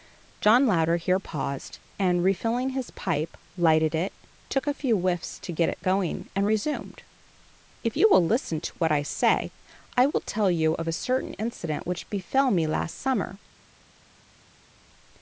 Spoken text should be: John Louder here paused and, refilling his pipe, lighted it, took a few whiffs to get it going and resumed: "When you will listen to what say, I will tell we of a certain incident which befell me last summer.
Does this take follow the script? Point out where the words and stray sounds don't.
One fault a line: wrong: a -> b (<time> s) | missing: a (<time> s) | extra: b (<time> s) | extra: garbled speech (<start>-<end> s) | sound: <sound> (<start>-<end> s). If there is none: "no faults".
wrong: When -> If (7.8 s)
extra: I (8.9 s)
wrong: we -> you (10.5 s)